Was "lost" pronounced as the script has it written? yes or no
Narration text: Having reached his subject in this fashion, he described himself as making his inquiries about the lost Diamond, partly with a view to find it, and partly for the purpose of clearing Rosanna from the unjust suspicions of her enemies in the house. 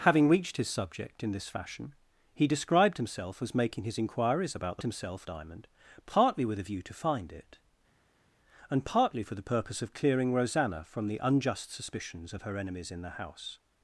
no